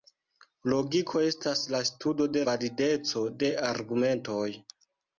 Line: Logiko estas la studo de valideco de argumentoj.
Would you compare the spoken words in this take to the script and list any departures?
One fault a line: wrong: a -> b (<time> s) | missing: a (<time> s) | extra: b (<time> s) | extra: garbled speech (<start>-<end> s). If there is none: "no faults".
no faults